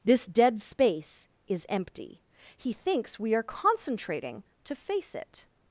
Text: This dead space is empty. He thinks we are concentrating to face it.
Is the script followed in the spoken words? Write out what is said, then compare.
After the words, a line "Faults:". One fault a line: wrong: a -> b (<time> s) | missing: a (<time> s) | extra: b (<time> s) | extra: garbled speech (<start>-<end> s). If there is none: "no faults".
This dead space is empty. He thinks we are concentrating to face it.
Faults:
no faults